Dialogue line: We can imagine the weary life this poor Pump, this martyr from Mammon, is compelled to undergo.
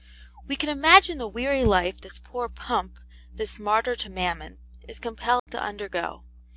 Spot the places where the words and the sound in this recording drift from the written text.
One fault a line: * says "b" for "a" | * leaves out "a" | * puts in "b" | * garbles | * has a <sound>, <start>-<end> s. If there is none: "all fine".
* says "to" for "from"
* has a dropout, 5.4-5.5 s